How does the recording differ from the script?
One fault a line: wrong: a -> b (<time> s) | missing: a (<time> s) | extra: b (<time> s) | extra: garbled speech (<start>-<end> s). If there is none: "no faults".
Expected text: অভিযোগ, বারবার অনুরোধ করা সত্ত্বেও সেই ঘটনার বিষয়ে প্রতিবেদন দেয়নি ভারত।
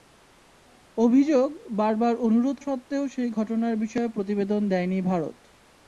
missing: করা (2.6 s)